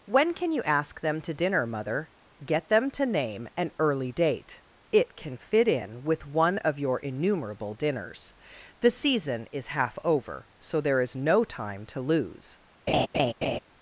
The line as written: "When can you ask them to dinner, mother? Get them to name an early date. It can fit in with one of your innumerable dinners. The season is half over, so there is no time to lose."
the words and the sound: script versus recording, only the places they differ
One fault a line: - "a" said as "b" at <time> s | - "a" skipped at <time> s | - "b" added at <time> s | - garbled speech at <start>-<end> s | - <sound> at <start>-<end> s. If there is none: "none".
- laugh at 12.9-13.6 s